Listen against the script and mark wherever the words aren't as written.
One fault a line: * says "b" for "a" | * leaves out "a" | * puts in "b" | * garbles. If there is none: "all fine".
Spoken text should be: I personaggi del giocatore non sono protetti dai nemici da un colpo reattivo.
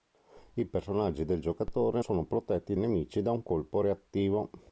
* leaves out "non"
* leaves out "dai"